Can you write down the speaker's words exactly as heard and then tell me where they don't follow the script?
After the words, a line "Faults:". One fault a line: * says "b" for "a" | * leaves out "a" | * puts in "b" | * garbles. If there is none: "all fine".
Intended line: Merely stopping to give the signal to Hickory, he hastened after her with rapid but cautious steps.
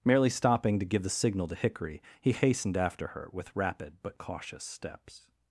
Merely stopping to give the signal to Hickory, he hastened after her with rapid but cautious steps.
Faults:
all fine